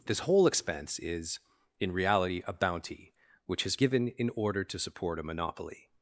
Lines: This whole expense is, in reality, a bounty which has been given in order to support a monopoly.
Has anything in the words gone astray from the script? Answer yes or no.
yes